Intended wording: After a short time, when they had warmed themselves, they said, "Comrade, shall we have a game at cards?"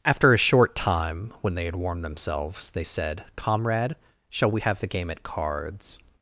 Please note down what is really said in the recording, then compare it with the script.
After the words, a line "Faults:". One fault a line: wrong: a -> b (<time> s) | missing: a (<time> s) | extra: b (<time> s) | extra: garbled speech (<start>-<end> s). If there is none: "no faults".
After a short time, when they had warmed themselves, they said, "Comrade, shall we have the game at cards?"
Faults:
wrong: a -> the (4.8 s)